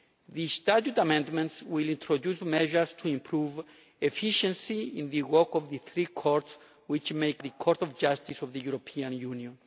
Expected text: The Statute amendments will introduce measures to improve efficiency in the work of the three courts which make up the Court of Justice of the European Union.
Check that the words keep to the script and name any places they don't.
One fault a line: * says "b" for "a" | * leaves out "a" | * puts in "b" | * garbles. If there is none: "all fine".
* leaves out "up"